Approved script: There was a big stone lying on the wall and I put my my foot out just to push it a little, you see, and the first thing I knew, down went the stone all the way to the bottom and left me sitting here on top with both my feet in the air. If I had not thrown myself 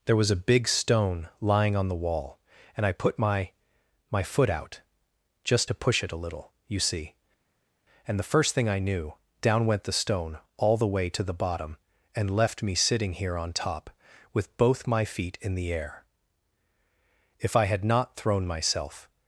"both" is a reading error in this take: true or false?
false